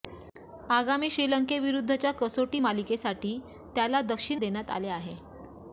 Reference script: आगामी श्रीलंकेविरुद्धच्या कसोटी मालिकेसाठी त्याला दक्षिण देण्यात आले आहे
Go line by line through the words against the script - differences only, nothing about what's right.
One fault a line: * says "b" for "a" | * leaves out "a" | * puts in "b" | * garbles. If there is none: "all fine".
all fine